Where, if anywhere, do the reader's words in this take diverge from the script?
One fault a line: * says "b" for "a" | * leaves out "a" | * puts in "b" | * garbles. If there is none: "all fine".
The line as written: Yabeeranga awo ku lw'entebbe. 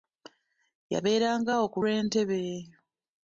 all fine